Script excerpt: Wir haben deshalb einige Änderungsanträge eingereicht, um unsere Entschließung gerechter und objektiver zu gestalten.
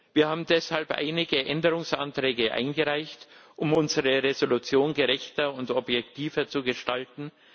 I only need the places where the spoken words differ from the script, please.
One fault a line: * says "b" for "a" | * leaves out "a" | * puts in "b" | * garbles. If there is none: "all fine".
all fine